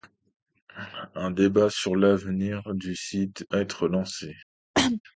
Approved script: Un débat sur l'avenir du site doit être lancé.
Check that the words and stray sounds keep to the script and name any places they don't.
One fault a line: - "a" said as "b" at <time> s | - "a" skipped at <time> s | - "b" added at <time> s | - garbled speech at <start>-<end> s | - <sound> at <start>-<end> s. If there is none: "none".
- "doit" skipped at 3.5 s
- cough at 4.7-5.0 s